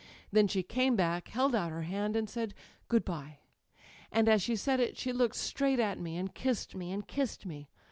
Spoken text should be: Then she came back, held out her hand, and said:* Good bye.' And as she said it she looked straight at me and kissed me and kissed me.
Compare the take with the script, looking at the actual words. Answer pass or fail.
pass